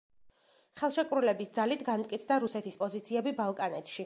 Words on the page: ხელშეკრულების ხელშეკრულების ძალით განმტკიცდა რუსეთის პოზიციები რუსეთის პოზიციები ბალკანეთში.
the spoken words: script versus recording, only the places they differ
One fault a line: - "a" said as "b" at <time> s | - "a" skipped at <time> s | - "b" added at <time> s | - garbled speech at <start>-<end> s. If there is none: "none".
- "ხელშეკრულების" skipped at 1.5 s
- "რუსეთის პოზიციები" skipped at 3.4 s